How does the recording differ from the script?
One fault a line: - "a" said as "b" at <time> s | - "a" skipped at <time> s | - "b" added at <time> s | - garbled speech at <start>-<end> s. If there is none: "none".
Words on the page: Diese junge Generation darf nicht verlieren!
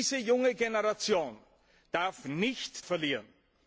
none